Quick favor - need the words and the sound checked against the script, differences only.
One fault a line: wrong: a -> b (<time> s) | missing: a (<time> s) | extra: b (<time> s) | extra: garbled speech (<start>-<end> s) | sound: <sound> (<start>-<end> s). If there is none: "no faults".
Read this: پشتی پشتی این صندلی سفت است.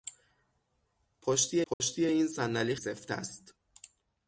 sound: dropout (1.7-1.8 s)